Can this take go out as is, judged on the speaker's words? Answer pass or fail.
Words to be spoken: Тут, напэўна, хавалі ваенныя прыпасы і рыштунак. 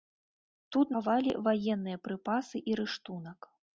fail